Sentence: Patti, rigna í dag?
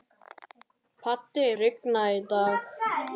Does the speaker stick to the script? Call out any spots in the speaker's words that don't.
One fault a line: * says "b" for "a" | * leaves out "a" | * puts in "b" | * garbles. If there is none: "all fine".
all fine